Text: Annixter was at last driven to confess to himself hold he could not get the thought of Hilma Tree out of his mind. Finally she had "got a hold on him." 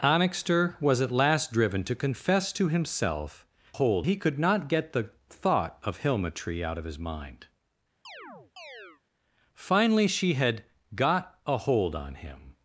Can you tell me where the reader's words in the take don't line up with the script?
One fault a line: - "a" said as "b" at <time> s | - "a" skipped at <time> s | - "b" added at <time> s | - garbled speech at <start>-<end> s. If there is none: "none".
none